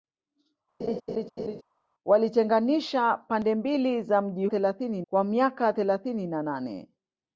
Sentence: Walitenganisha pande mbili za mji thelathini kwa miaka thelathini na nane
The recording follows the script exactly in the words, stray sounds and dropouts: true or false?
false